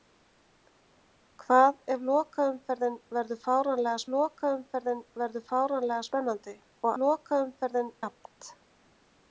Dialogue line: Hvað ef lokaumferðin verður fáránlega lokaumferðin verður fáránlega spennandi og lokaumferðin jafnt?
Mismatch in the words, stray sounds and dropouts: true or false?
false